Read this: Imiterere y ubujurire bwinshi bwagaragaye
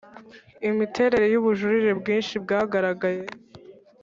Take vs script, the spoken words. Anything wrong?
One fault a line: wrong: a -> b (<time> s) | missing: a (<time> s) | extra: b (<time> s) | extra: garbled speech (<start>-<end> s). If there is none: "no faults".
no faults